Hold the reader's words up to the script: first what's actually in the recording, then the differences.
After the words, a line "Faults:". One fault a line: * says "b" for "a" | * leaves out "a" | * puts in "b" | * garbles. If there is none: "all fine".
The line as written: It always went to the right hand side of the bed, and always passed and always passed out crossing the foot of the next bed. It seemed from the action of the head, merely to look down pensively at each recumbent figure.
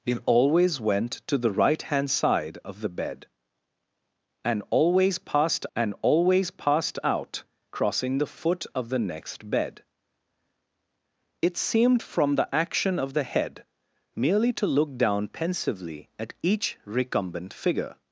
It always went to the right hand side of the bed, and always passed and always passed out crossing the foot of the next bed. It seemed from the action of the head, merely to look down pensively at each recumbent figure.
Faults:
all fine